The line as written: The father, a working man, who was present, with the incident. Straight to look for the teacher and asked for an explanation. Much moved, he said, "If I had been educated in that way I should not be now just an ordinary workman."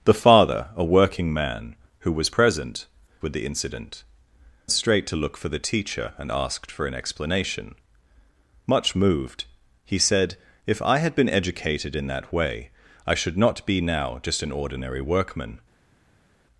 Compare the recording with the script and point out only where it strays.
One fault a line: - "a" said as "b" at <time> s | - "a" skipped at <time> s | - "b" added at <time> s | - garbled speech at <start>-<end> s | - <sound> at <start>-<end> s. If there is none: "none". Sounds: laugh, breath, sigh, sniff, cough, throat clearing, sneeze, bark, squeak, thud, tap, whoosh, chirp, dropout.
none